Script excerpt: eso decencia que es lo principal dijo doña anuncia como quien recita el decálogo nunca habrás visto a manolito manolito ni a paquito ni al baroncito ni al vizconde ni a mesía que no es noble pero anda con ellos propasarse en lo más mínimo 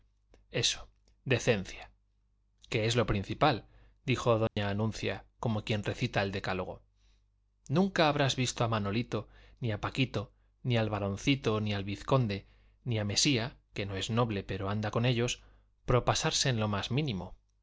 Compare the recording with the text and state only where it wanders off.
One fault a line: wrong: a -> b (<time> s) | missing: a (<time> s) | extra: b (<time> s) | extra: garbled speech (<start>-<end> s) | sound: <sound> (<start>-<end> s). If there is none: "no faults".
sound: dropout (4.5-4.6 s)
missing: manolito (9.3 s)